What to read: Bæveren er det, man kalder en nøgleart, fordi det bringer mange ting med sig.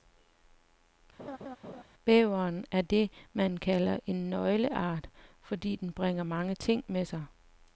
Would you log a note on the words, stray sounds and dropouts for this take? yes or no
yes